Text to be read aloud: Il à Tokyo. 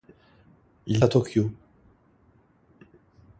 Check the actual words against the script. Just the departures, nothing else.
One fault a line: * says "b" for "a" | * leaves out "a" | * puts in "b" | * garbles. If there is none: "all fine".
all fine